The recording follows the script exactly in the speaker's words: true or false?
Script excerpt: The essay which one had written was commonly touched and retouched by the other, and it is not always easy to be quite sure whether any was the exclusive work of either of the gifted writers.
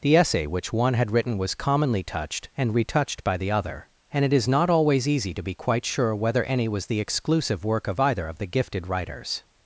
true